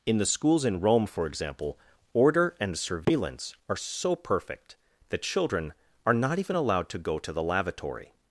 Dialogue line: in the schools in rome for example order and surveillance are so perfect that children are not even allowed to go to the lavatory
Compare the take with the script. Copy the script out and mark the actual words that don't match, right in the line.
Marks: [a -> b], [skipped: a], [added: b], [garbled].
in the schools in rome for example order and surveillance are so perfect that children are not even allowed to go to the lavatory